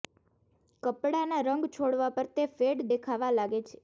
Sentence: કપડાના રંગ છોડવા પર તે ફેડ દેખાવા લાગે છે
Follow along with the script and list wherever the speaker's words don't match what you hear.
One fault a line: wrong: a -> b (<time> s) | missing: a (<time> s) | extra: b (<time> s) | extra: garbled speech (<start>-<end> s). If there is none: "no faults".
no faults